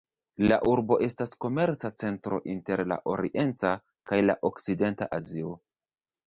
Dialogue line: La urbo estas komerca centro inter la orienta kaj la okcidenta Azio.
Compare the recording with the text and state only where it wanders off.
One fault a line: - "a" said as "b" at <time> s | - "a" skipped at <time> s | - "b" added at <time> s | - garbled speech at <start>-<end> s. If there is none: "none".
none